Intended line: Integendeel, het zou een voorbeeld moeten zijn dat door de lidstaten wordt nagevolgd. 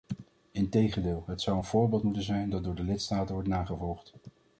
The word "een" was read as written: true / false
true